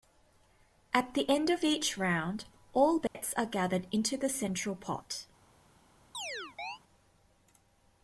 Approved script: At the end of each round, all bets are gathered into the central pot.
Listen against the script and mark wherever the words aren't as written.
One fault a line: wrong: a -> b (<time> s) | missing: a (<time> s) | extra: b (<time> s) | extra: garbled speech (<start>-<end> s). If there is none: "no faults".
no faults